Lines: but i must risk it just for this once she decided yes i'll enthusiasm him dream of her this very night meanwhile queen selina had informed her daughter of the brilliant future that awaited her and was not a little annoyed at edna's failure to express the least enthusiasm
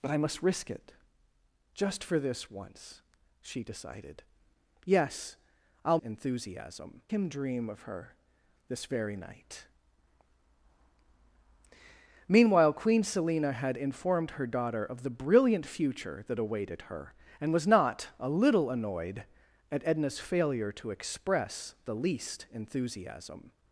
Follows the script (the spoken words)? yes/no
yes